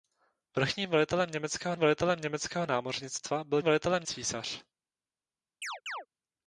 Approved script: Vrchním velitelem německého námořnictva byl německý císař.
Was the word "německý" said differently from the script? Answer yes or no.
yes